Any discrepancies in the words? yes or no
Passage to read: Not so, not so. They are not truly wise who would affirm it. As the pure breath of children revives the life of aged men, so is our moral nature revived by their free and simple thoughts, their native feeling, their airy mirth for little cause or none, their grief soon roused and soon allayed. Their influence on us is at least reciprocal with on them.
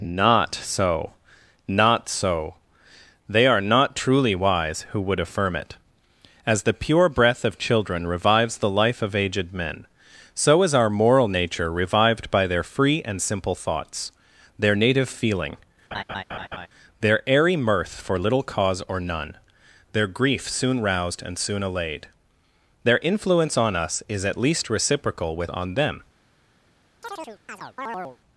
no